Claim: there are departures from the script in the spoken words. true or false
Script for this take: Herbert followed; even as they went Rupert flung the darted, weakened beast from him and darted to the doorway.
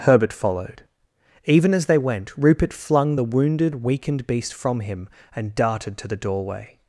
true